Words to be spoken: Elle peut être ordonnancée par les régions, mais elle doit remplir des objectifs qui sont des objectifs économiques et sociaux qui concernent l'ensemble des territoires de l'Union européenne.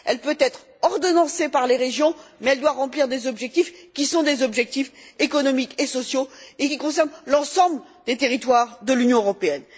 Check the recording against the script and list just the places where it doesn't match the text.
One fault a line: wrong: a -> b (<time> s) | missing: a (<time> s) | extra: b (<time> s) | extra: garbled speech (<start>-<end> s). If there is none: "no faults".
extra: et (6.6 s)